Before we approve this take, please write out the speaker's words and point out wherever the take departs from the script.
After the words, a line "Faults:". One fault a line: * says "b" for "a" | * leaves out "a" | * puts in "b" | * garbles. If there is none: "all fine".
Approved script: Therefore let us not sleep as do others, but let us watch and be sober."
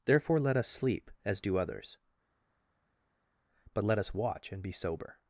Therefore let us sleep as do others, but let us watch and be sober."
Faults:
* leaves out "not"